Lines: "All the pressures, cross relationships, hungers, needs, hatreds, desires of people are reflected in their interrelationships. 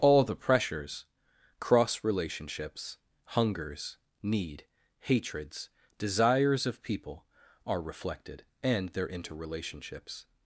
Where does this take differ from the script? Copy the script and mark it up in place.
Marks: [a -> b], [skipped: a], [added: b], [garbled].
"All the pressures, cross relationships, hungers, [needs, -> need] hatreds, desires of people are reflected [in -> and] their interrelationships.